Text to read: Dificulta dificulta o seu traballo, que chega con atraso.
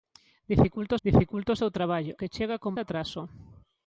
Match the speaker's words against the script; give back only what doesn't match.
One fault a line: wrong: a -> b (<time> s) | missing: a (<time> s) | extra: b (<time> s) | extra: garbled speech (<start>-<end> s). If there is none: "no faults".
no faults